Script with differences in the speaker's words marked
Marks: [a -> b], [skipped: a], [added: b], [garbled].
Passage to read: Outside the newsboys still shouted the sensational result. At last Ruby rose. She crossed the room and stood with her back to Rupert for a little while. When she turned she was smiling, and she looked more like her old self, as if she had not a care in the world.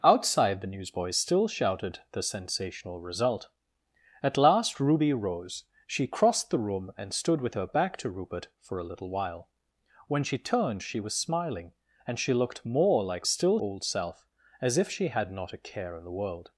Outside the newsboys still shouted the sensational result. At last Ruby rose. She crossed the room and stood with her back to Rupert for a little while. When she turned she was smiling, and she looked more like [her -> still] old self, as if she had not a care in the world.